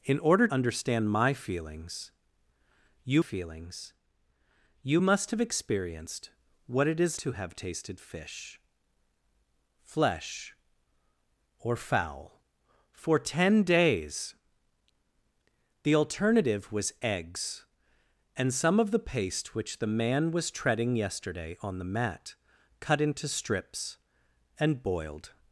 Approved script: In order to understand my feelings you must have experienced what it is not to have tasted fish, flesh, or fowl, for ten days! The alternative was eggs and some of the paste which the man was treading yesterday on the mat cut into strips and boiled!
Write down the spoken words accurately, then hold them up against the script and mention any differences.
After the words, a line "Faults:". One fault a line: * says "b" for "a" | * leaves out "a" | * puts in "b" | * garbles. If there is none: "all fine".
In order understand my feelings you feelings you must have experienced what it is to have tasted fish, flesh, or fowl, for ten days! The alternative was eggs and some of the paste which the man was treading yesterday on the mat cut into strips and boiled!
Faults:
* leaves out "to"
* puts in "feelings you"
* leaves out "not"